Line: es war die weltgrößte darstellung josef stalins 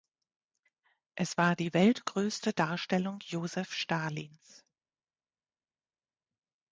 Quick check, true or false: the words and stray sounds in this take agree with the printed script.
true